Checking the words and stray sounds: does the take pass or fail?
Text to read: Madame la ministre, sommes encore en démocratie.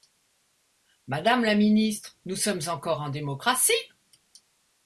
fail